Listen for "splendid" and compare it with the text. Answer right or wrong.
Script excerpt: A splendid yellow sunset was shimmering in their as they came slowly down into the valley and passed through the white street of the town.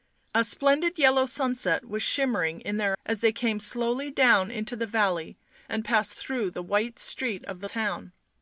right